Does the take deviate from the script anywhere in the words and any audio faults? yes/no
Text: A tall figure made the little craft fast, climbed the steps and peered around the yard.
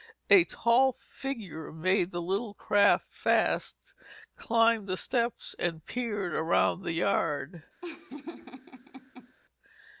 yes